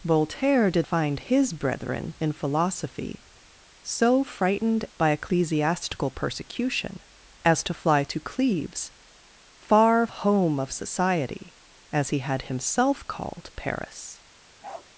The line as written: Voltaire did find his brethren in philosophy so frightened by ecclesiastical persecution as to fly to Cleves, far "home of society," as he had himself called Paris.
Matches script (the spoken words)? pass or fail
pass